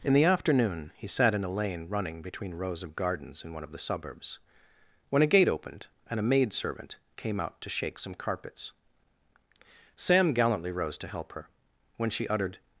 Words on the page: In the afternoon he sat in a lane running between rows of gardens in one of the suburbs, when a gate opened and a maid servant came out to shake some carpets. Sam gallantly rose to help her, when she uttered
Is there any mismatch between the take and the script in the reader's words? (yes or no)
no